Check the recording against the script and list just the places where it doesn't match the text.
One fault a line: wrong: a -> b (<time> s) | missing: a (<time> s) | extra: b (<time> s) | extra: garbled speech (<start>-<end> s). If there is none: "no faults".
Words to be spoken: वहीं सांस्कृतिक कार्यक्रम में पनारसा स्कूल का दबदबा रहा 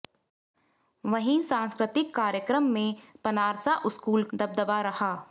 missing: का (4.2 s)